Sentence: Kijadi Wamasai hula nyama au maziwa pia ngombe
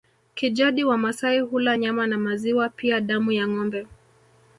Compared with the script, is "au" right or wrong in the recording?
wrong